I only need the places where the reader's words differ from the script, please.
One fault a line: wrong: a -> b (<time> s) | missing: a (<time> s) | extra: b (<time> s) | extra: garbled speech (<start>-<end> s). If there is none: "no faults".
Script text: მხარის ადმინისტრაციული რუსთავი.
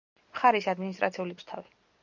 no faults